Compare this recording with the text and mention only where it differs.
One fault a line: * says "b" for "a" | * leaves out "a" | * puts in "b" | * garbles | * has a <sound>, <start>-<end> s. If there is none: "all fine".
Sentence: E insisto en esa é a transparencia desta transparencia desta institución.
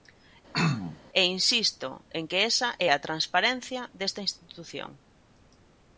* has a throat clearing, 0.5-1.0 s
* puts in "que"
* leaves out "transparencia desta"